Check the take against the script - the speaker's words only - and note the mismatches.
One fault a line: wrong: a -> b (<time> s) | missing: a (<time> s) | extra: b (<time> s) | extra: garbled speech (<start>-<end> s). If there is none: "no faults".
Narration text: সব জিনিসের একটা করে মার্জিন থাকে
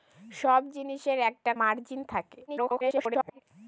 missing: করে (1.5 s)
extra: garbled speech (2.5-3.4 s)